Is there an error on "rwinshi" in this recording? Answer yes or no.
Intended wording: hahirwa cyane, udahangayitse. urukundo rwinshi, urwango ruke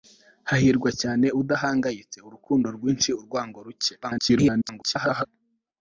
no